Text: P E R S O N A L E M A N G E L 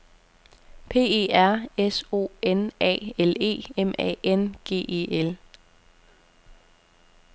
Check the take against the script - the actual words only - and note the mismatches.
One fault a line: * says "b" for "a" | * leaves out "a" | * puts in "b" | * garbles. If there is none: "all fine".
all fine